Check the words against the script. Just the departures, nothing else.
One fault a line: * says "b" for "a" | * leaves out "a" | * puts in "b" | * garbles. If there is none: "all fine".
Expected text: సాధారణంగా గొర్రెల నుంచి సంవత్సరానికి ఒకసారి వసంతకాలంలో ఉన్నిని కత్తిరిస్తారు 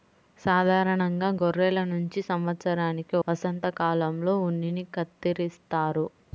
* leaves out "ఒకసారి"